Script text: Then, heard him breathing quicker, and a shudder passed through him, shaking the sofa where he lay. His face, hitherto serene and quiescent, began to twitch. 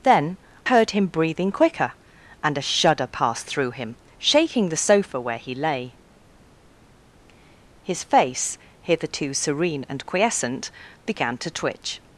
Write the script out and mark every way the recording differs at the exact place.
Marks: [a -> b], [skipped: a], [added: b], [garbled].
Then, heard him breathing quicker, and a shudder passed through him, shaking the sofa where he lay. His face, hitherto serene and quiescent, began to twitch.